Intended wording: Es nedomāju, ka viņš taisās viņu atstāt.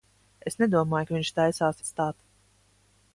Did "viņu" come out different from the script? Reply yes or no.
yes